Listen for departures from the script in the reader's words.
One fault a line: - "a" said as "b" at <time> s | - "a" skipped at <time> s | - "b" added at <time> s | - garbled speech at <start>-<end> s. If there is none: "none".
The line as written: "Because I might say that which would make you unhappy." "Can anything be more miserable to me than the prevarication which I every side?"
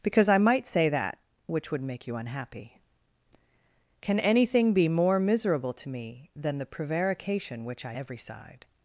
none